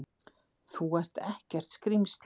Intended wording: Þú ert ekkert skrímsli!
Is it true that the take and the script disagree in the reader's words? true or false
false